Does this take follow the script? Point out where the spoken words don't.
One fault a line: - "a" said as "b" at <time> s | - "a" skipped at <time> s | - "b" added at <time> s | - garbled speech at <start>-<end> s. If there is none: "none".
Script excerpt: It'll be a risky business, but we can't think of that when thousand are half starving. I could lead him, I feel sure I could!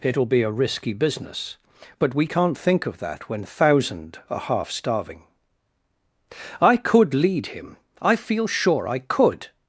none